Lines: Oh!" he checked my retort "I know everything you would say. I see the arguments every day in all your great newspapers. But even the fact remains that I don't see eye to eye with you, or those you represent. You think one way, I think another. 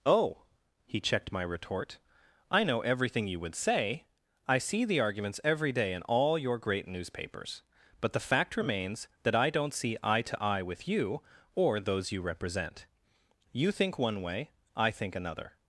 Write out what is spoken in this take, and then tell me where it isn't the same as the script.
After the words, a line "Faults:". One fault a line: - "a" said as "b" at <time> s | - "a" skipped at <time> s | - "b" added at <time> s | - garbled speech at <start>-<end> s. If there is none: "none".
Oh!" he checked my retort "I know everything you would say. I see the arguments every day in all your great newspapers. But the fact remains that I don't see eye to eye with you, or those you represent. You think one way, I think another.
Faults:
- "even" skipped at 8.1 s